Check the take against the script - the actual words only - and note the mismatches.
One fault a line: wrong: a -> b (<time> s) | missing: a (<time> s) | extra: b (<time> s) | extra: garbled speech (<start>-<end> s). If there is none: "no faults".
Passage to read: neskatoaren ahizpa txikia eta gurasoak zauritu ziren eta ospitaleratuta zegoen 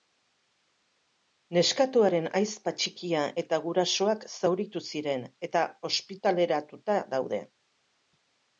wrong: zegoen -> daude (7.2 s)